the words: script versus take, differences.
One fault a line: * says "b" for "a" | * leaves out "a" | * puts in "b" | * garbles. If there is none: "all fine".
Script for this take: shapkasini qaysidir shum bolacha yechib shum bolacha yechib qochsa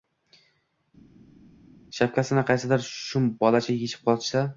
* leaves out "shum bolacha yechib"